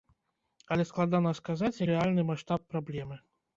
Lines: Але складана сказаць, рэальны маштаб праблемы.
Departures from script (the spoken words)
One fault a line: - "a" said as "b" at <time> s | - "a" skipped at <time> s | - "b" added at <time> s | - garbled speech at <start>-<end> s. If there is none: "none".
none